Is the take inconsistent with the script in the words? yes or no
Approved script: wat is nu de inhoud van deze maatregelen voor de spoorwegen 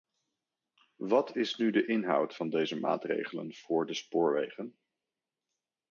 no